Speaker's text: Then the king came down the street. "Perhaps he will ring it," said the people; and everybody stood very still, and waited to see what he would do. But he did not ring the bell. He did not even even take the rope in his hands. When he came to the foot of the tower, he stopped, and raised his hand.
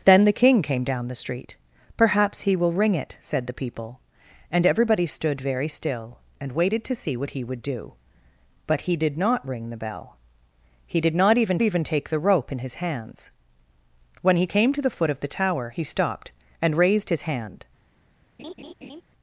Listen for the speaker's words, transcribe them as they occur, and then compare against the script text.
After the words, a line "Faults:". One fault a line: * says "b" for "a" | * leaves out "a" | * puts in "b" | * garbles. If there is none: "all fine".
Then the king came down the street. "Perhaps he will ring it," said the people; and everybody stood very still, and waited to see what he would do. But he did not ring the bell. He did not even even take the rope in his hands. When he came to the foot of the tower, he stopped, and raised his hand.
Faults:
all fine